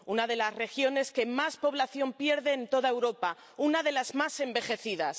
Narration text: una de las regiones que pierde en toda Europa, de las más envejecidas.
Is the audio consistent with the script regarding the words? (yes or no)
no